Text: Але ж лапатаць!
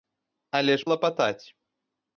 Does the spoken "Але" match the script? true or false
true